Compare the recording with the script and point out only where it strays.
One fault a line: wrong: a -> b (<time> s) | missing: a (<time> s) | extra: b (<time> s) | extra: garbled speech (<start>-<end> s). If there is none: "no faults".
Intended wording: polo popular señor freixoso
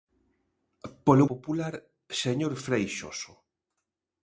no faults